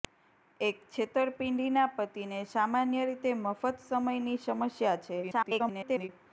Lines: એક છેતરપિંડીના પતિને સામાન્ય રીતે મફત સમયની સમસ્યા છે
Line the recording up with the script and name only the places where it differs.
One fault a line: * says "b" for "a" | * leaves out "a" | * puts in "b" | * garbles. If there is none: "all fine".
* garbles